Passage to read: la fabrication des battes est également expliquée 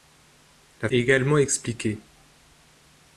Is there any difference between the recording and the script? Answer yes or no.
yes